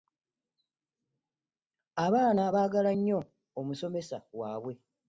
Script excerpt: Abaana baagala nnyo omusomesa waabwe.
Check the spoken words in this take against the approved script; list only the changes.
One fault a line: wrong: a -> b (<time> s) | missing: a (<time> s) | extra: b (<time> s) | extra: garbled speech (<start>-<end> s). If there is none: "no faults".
no faults